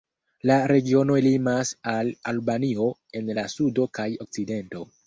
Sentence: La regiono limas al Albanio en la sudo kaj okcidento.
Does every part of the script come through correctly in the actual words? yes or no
yes